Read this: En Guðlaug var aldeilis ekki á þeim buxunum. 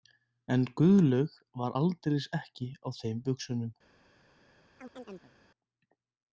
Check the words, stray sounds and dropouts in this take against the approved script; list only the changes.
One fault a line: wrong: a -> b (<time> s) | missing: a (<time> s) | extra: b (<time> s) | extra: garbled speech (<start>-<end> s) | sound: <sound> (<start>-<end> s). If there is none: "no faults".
sound: chirp (4.8-5.3 s)